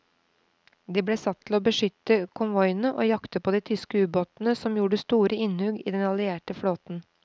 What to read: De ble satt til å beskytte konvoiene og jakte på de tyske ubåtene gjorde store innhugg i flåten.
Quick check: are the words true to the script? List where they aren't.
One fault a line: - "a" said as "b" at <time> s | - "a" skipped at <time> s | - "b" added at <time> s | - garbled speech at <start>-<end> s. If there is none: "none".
- "som" added at 4.6 s
- "den allierte" added at 6.0 s